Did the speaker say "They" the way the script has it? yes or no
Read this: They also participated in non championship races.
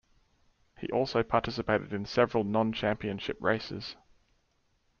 no